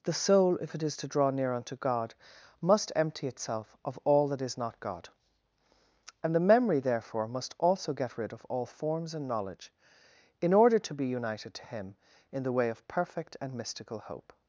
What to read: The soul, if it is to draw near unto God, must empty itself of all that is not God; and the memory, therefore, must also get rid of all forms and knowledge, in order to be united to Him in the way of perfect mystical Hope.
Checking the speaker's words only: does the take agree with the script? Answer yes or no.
no